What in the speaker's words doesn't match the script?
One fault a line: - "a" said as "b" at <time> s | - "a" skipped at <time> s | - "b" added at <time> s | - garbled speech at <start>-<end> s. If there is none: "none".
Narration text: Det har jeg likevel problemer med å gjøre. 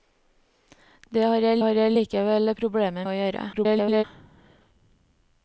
- "har jeg" added at 1.6 s
- "med" skipped at 3.1 s
- garbled speech at 3.5-4.0 s